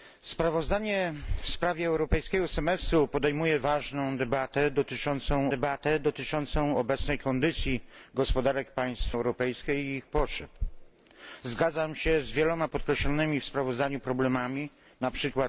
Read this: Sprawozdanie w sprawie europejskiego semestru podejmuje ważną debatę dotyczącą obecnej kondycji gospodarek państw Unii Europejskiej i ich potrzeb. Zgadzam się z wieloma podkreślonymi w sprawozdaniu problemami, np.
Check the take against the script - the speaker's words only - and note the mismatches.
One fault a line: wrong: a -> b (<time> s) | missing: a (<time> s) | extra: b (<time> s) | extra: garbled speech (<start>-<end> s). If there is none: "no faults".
extra: debatę dotyczącą (5.5 s)
missing: Unii (9.1 s)